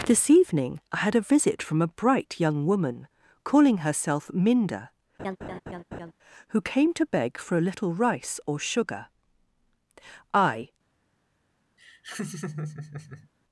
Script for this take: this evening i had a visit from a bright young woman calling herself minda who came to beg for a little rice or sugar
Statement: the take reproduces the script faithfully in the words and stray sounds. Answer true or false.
false